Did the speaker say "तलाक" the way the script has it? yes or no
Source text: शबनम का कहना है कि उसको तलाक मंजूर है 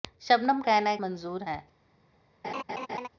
no